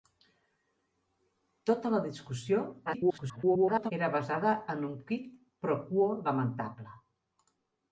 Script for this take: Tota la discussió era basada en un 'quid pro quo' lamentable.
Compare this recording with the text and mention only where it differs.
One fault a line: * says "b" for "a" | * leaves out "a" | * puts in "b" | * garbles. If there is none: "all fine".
* garbles